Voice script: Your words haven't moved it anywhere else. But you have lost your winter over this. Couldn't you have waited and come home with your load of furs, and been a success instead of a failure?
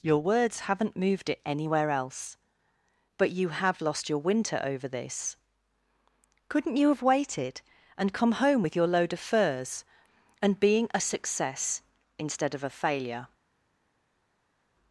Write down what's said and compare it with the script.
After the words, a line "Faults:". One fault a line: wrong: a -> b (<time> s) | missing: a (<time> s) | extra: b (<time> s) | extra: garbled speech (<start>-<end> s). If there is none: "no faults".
Your words haven't moved it anywhere else. But you have lost your winter over this. Couldn't you have waited and come home with your load of furs, and being a success instead of a failure?
Faults:
wrong: been -> being (10.6 s)